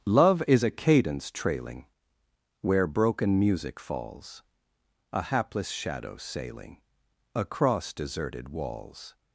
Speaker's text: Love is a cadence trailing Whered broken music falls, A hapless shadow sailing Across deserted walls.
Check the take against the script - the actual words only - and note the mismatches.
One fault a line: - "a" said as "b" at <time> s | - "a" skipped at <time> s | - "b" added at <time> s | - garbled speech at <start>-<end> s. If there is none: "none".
- "Whered" said as "Where" at 2.6 s